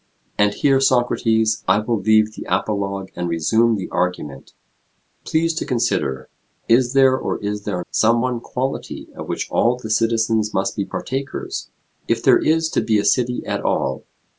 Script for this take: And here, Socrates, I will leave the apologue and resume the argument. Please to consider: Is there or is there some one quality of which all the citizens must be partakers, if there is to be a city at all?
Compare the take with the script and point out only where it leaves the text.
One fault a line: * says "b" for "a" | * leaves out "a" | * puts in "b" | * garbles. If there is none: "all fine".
all fine